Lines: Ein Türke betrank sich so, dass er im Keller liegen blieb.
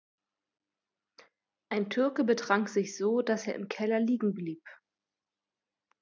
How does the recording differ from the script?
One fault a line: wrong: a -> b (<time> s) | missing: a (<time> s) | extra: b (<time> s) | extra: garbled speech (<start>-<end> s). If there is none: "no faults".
no faults